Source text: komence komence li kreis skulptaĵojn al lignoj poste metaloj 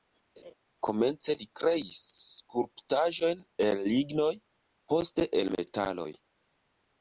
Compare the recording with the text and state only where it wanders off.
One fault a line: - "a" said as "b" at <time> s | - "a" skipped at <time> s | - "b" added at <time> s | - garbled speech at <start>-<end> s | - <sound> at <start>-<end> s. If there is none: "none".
- laugh at 0.4-0.5 s
- "komence" skipped at 1.3 s
- "al" said as "el" at 3.7 s
- "el" added at 5.4 s